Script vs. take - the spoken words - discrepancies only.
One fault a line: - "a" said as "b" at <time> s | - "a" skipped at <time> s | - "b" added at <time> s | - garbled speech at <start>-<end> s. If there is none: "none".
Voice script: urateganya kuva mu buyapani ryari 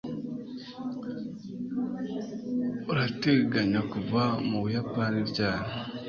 none